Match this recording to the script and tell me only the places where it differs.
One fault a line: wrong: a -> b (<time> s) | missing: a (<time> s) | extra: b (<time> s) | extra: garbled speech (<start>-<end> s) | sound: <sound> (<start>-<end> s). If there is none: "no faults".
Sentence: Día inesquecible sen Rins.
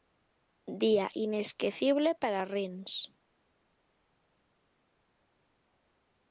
wrong: sen -> para (2.1 s)